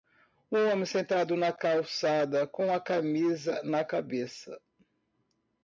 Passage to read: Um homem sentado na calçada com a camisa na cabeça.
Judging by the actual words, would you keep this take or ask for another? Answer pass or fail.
pass